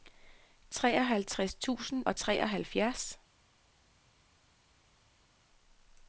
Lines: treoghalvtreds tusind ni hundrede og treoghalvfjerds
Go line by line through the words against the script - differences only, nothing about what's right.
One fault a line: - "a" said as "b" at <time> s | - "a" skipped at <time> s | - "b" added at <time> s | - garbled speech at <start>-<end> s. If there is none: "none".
- "ni hundrede" skipped at 2.0 s